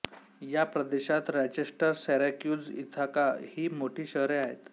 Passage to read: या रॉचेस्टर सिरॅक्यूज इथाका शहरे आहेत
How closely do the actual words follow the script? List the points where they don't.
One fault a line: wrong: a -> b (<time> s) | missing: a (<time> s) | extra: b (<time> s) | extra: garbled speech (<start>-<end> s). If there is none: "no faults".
extra: प्रदेशात (0.7 s)
extra: ही मोठी (3.5 s)